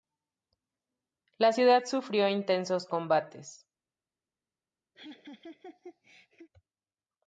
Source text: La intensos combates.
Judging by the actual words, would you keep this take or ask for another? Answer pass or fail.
fail